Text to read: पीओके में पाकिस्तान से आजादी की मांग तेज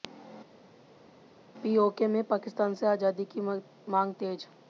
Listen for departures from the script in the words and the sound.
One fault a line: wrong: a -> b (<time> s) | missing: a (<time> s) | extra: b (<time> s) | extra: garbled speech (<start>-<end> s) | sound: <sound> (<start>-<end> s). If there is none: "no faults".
no faults